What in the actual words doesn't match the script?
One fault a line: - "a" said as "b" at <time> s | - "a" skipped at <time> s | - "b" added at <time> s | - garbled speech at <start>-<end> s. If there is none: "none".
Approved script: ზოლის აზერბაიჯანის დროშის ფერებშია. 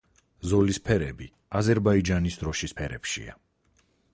- "ფერები" added at 0.9 s